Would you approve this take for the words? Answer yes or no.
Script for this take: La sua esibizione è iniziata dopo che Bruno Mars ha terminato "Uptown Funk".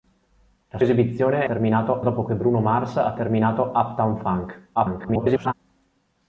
no